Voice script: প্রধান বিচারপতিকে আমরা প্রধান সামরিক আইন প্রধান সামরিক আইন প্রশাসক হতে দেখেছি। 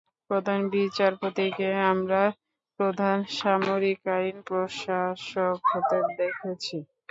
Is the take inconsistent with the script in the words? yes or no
yes